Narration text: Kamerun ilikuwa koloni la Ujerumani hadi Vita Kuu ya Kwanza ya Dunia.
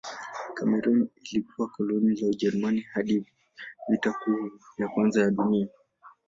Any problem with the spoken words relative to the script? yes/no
no